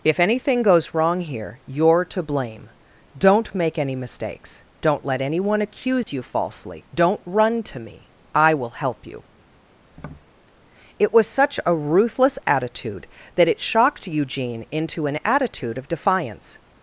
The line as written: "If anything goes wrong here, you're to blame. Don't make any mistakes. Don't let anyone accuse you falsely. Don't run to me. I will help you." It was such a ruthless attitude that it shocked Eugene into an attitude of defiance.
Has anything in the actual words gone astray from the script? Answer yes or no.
no